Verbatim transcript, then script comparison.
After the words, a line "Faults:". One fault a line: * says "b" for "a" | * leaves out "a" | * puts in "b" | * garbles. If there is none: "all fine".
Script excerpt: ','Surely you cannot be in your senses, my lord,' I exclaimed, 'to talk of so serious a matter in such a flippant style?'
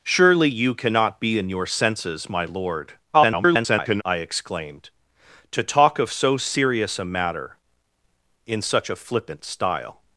','Surely you cannot be in your senses, my lord,' [garbled] I exclaimed, 'to talk of so serious a matter in such a flippant style?'
Faults:
* garbles